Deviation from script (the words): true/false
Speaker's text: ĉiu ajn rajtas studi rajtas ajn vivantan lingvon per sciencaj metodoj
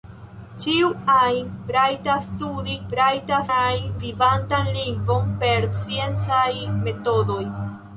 false